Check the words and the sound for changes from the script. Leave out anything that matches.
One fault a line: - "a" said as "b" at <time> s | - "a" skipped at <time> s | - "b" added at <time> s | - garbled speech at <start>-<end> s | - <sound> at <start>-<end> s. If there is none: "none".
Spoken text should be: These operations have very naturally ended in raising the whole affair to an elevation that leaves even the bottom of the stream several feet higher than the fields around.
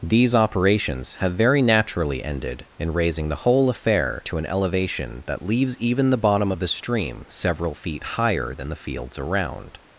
none